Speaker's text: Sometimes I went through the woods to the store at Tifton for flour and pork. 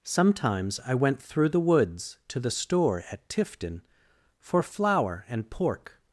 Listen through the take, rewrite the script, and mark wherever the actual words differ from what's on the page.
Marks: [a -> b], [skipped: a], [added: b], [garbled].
Sometimes I went through the woods to the store at Tifton for flour and pork.